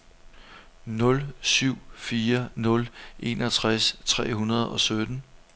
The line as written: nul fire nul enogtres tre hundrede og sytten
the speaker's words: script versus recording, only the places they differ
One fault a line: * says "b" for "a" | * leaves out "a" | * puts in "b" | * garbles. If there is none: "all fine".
* puts in "syv"